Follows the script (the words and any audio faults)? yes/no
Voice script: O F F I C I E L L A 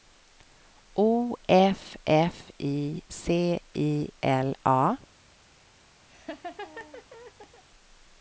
no